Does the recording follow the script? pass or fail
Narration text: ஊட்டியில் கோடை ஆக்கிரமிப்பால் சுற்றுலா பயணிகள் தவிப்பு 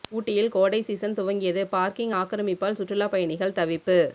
fail